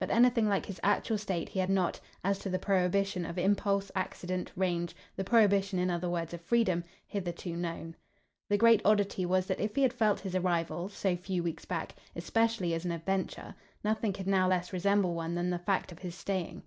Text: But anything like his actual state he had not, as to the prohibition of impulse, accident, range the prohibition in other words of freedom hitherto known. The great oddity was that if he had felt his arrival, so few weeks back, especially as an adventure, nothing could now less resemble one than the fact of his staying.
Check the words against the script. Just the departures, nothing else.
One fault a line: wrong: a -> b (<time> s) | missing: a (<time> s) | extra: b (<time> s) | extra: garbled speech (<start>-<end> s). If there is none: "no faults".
no faults